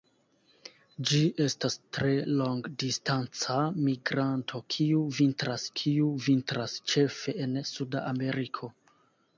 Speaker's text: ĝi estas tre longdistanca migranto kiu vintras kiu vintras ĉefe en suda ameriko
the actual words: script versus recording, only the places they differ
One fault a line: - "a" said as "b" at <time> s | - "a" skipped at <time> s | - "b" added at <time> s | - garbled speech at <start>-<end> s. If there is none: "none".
none